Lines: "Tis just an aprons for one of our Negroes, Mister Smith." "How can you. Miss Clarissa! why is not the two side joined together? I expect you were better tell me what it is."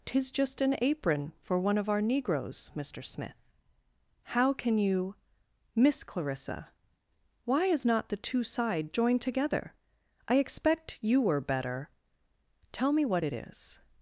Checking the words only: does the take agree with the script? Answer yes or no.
no